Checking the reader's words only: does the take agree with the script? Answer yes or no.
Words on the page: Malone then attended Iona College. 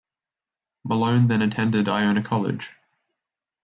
yes